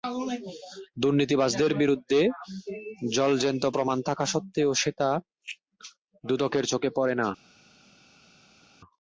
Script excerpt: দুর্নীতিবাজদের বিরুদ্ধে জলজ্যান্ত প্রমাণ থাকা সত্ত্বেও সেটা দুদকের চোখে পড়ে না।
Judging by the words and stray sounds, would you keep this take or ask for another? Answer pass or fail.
pass